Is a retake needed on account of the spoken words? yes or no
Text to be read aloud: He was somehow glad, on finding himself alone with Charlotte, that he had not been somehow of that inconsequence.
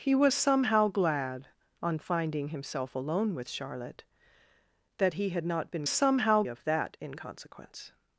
no